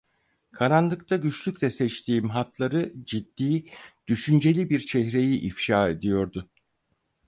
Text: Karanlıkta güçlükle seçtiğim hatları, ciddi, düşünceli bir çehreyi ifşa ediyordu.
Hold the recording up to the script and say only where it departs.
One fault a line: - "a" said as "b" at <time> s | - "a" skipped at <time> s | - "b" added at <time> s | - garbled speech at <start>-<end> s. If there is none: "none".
none